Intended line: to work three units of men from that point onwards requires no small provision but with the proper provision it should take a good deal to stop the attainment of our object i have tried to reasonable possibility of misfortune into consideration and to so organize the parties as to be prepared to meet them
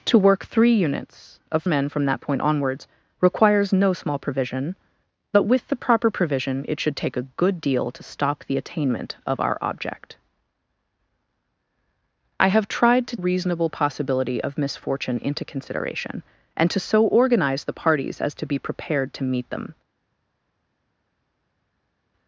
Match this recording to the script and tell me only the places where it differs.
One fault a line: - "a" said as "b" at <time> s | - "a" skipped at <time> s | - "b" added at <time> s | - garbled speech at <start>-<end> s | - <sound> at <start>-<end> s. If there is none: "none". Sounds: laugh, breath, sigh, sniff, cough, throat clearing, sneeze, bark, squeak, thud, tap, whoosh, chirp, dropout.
none